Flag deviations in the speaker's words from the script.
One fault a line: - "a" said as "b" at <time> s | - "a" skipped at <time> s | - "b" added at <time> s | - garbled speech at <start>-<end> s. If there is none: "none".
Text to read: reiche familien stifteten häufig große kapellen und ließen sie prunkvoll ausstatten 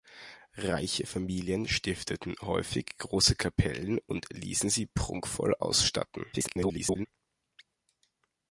- garbled speech at 6.3-7.1 s